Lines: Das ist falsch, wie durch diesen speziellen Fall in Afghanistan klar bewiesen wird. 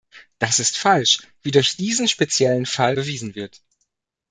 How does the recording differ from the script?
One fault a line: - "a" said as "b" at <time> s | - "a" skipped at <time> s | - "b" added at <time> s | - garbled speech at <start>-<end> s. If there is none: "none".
- "in Afghanistan klar" skipped at 3.0 s